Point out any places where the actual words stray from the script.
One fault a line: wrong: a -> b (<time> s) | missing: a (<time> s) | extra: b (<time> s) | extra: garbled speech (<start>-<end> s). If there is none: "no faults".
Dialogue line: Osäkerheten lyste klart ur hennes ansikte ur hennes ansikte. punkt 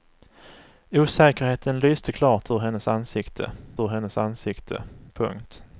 no faults